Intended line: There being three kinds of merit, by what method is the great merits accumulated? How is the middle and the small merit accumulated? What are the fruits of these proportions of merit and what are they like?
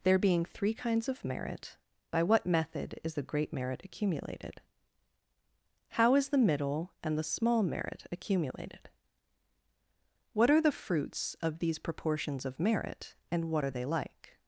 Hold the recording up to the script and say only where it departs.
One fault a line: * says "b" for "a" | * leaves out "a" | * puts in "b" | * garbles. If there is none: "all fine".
* says "merit" for "merits"